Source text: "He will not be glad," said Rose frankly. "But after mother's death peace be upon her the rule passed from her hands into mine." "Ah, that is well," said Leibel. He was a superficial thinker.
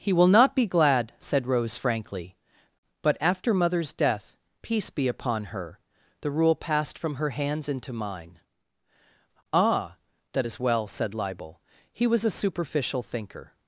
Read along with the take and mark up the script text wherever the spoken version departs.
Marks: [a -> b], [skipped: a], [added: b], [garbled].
"He will not be glad," said Rose frankly. "But after mother's death peace be upon her the rule passed from her hands into mine." "Ah, that is well," said Leibel. He was a superficial thinker.